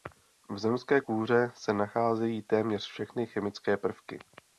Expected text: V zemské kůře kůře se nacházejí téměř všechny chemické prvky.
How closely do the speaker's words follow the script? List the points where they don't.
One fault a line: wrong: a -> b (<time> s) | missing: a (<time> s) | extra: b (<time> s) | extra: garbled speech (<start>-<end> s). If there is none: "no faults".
missing: kůře (1.5 s)